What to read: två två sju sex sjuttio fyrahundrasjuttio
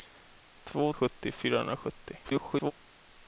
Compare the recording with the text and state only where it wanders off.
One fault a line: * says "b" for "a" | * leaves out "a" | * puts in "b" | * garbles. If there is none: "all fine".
* leaves out "två sju sex"
* garbles